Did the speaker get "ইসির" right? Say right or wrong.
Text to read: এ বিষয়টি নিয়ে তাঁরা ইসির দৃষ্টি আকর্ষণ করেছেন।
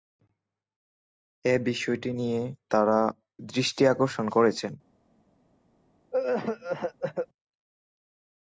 wrong